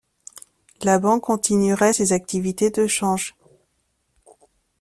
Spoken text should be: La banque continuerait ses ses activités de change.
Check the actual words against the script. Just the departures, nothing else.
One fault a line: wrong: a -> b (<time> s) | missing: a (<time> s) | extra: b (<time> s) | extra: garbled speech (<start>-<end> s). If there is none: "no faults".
missing: ses (2.1 s)